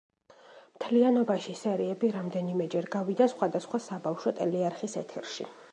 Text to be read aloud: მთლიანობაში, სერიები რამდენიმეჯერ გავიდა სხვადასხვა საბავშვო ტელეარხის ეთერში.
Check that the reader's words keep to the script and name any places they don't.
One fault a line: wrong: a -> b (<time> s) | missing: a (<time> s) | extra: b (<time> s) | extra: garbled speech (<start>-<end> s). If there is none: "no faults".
no faults